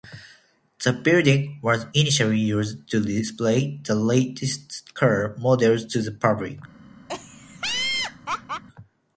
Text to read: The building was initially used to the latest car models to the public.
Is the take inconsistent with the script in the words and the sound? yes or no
yes